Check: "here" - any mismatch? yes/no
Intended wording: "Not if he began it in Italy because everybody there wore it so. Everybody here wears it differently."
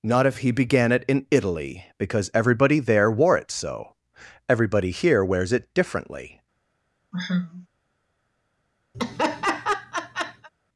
no